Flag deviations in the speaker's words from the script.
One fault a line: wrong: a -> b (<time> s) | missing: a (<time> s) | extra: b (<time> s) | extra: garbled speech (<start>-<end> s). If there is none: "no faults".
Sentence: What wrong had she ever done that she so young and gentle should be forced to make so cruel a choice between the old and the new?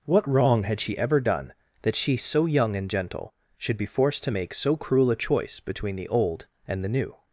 no faults